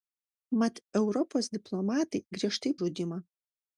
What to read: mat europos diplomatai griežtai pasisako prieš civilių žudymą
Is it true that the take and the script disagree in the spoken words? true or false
true